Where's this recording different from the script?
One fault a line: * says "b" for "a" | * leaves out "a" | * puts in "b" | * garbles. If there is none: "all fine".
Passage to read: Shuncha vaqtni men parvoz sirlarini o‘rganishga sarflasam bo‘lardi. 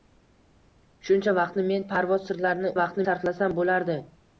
* says "vaqtni" for "o‘rganishga"